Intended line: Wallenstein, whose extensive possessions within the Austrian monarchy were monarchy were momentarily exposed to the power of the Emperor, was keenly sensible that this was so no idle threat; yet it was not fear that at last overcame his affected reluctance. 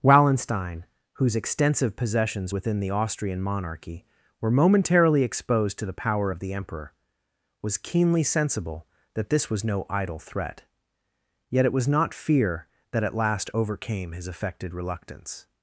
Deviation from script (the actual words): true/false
true